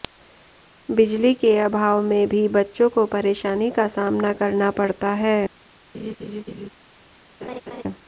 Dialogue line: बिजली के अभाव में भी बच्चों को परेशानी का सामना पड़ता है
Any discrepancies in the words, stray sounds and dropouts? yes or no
yes